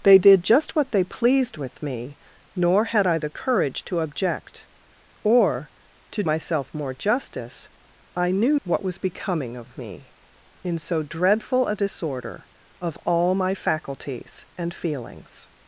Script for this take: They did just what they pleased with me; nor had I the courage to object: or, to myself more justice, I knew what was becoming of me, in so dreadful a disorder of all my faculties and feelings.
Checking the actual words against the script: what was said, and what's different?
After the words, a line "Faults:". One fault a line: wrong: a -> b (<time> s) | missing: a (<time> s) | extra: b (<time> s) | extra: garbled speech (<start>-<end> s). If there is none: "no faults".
They did just what they pleased with me; nor had I the courage to object: or, to myself more justice, I knew what was becoming of me, in so dreadful a disorder of all my faculties and feelings.
Faults:
no faults